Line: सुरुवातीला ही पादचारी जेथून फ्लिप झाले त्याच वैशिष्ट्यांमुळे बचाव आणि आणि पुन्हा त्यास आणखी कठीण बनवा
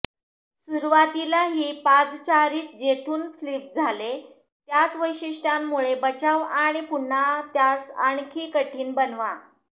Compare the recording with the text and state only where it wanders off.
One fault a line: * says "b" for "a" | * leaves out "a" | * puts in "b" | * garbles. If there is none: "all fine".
* leaves out "आणि"